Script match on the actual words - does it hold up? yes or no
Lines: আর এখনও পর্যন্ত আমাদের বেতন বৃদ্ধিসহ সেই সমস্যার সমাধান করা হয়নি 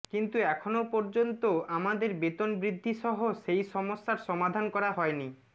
no